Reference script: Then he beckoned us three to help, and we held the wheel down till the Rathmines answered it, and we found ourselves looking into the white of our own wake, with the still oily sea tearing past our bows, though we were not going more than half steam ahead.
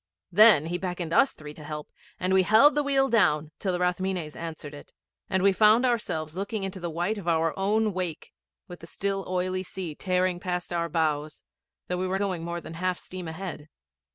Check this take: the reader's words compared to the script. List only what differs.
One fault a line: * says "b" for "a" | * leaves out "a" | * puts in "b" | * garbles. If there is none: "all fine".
* leaves out "not"